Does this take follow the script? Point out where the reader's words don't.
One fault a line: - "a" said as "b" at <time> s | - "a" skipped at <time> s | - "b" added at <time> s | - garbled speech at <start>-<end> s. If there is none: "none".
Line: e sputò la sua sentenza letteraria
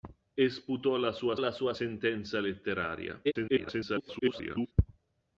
- "la sua" added at 1.4 s
- garbled speech at 3.2-4.7 s